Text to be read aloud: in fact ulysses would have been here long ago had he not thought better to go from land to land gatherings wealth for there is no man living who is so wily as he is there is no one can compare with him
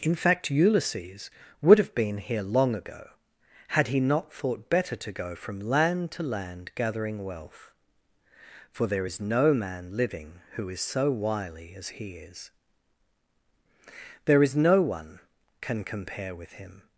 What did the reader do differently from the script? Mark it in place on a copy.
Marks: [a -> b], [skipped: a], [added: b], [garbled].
in fact ulysses would have been here long ago had he not thought better to go from land to land [gatherings -> gathering] wealth for there is no man living who is so wily as he is there is no one can compare with him